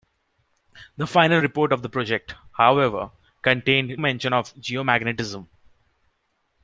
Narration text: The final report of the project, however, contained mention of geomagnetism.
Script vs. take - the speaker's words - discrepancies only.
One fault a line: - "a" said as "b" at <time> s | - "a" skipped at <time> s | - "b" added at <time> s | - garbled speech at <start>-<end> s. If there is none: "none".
none